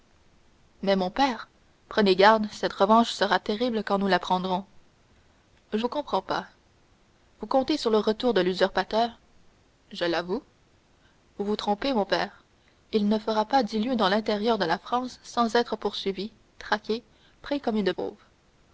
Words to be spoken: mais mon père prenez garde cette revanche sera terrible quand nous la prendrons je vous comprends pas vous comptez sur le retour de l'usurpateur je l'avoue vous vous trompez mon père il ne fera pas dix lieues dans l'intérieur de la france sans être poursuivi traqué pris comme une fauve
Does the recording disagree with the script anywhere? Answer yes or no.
no